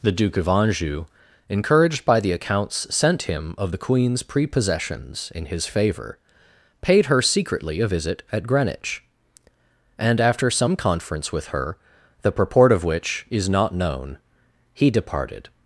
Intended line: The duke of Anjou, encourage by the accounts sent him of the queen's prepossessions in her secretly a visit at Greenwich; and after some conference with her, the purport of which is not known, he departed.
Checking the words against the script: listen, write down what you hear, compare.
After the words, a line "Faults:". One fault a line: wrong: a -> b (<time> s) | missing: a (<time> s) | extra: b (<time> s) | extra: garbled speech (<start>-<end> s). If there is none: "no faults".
The duke of Anjou, encouraged by the accounts sent him of the queen's prepossessions in his favor, paid her secretly a visit at Greenwich; and after some conference with her, the purport of which is not known, he departed.
Faults:
wrong: encourage -> encouraged (1.5 s)
extra: his favor paid (5.5 s)